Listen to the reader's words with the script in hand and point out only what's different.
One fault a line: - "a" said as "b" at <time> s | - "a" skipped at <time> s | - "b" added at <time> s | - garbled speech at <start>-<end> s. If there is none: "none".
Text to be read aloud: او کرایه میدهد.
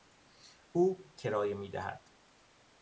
none